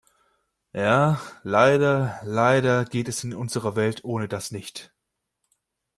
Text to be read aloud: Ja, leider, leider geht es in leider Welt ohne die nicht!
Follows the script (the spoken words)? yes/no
no